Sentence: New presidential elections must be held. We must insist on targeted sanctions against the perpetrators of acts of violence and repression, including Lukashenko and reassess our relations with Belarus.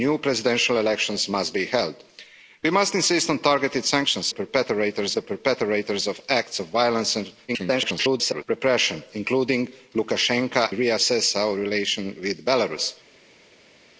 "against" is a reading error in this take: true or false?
true